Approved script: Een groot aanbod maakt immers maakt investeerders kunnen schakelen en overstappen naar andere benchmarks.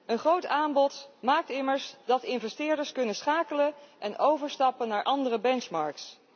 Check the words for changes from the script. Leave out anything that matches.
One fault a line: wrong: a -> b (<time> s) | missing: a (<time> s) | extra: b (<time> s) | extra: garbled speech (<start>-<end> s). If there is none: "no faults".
wrong: maakt -> dat (2.0 s)